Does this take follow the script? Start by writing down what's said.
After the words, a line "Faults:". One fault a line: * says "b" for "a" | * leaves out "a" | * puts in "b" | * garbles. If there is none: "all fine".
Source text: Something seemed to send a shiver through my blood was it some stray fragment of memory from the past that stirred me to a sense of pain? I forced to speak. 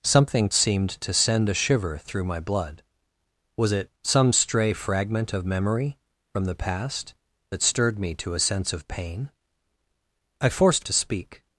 Something seemed to send a shiver through my blood was it some stray fragment of memory from the past that stirred me to a sense of pain? I forced to speak.
Faults:
all fine